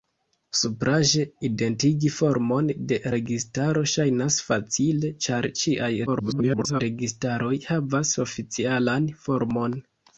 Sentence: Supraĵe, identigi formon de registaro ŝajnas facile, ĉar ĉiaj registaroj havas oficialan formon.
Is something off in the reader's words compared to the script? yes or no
yes